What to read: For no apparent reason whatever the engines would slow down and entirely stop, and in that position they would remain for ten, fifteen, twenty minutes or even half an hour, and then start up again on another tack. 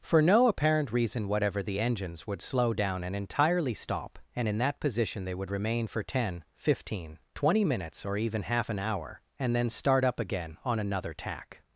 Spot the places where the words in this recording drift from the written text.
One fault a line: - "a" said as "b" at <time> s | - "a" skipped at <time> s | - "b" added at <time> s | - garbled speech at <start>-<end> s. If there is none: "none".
none